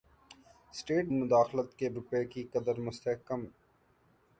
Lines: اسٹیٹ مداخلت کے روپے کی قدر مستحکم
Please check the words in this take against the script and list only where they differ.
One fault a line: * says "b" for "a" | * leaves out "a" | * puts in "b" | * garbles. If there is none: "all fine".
all fine